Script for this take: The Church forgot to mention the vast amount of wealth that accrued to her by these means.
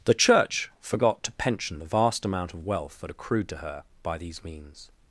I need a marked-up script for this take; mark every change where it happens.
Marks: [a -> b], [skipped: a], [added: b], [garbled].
The Church forgot to [mention -> pension] the vast amount of wealth that accrued to her by these means.